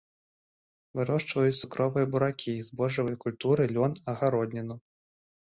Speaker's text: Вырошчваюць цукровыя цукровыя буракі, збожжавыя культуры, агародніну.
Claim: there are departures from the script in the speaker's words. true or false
true